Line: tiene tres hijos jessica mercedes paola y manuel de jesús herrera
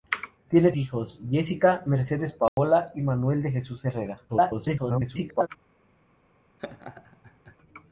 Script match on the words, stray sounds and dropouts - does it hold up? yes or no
no